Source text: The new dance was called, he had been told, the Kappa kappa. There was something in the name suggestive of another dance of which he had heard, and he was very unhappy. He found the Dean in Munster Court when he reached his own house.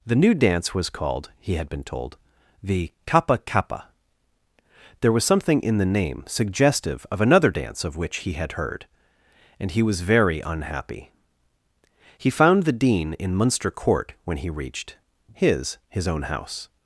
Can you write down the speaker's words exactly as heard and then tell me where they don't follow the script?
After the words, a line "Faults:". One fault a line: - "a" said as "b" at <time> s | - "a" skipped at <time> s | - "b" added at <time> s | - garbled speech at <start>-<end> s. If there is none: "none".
The new dance was called, he had been told, the Kappa kappa. There was something in the name suggestive of another dance of which he had heard, and he was very unhappy. He found the Dean in Munster Court when he reached his his own house.
Faults:
- "his" added at 15.9 s